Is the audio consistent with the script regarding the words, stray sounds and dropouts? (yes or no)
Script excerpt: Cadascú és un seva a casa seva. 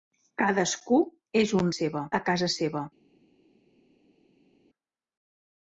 yes